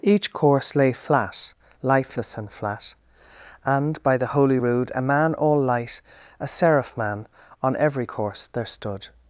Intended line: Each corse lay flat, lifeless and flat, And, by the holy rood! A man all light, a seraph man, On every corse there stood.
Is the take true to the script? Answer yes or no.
yes